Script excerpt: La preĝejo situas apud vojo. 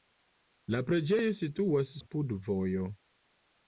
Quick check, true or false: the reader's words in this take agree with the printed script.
true